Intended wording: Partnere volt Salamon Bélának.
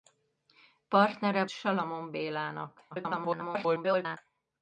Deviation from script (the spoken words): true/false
true